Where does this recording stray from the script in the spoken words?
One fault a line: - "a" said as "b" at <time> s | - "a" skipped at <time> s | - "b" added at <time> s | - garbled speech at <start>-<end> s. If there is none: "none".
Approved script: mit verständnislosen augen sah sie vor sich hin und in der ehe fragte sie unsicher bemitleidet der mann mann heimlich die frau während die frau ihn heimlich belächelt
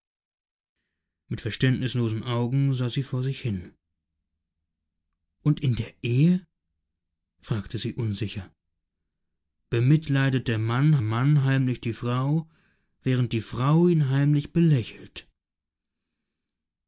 none